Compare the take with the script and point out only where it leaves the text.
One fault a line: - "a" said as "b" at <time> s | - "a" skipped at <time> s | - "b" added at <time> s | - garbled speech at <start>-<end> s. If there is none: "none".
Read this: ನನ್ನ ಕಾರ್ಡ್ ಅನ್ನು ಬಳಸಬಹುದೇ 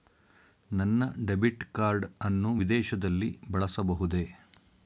- "ಡೆಬಿಟ್" added at 1.2 s
- "ವಿದೇಶದಲ್ಲಿ" added at 2.6 s